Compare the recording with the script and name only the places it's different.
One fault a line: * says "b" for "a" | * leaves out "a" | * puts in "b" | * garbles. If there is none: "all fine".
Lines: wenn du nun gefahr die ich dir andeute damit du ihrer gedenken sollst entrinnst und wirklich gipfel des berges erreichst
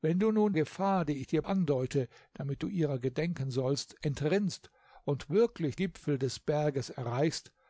all fine